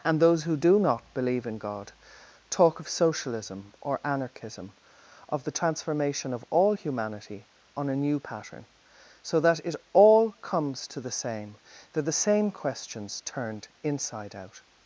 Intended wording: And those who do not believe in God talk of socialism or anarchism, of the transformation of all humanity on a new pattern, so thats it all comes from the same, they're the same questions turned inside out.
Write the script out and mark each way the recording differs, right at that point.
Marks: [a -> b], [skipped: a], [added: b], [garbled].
And those who do not believe in God talk of socialism or anarchism, of the transformation of all humanity on a new pattern, so [thats -> that] it all comes [from -> to] the same, they're the same questions turned inside out.